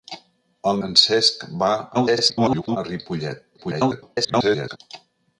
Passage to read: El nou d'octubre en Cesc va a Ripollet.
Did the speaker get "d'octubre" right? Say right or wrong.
wrong